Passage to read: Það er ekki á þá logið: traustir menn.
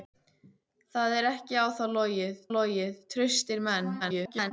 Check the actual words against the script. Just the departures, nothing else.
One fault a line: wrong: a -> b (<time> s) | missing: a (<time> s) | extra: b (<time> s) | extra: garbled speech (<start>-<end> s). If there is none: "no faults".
extra: logið (2.6 s)
extra: garbled speech (4.0-4.5 s)